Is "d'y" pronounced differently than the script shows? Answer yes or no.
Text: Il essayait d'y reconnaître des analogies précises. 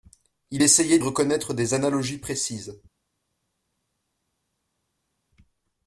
yes